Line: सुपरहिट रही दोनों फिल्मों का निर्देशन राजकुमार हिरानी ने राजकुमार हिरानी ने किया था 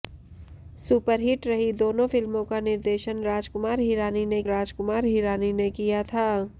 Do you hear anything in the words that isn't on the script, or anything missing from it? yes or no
no